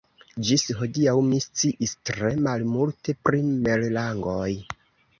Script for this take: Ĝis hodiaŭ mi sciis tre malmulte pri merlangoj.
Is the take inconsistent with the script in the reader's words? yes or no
no